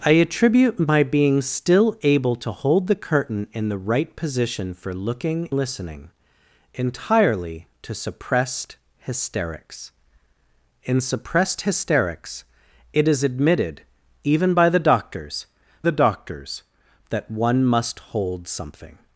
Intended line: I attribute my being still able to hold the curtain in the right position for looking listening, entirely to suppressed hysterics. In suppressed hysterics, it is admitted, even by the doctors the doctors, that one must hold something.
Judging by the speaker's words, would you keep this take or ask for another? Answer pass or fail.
pass